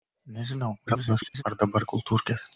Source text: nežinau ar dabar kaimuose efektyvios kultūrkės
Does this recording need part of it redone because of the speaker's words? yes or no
yes